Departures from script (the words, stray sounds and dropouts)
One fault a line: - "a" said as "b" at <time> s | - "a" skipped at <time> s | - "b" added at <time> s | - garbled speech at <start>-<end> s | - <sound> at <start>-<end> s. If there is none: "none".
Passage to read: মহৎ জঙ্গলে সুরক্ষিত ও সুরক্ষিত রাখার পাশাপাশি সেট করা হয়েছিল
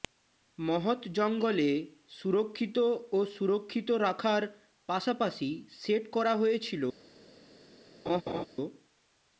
- laugh at 8.1-8.5 s